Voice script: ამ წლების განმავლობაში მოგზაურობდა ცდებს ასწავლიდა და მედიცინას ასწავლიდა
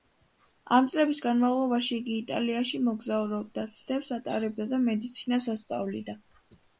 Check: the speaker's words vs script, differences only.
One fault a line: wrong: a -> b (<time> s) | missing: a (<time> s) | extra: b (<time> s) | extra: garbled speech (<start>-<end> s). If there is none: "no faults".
extra: იგი იტალიაში (2.0 s)
wrong: ასწავლიდა -> ატარებდა (4.2 s)